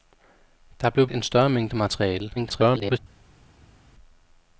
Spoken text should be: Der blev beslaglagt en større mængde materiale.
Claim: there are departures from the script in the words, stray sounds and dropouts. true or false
true